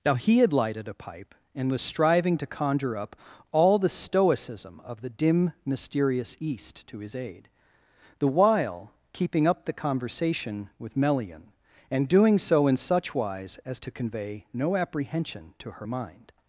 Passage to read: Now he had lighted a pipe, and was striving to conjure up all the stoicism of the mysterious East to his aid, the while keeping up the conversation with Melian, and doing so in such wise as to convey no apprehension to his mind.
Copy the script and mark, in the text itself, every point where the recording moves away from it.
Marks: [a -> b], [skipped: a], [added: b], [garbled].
Now he had lighted a pipe, and was striving to conjure up all the stoicism of the [added: dim] mysterious East to his aid, the while keeping up the conversation with Melian, and doing so in such wise as to convey no apprehension to [his -> her] mind.